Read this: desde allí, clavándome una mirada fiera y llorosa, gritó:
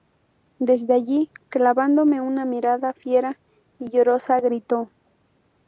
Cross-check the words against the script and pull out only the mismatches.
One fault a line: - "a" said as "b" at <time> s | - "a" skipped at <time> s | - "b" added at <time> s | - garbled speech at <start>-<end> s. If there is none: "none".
none